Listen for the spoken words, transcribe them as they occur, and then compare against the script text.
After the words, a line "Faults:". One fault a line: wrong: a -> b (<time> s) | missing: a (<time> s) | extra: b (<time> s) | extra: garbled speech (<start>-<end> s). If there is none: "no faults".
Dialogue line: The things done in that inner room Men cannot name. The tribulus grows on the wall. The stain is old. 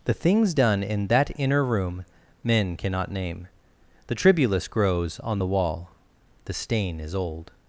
The things done in that inner room Men cannot name. The tribulus grows on the wall. The stain is old.
Faults:
no faults